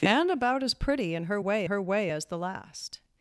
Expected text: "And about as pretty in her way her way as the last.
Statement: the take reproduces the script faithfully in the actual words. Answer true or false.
true